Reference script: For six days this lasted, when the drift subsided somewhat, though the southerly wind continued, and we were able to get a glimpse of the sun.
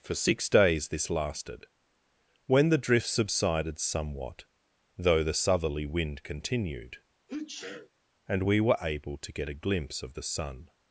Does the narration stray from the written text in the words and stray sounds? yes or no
yes